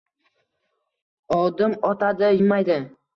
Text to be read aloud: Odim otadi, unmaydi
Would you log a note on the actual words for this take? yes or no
no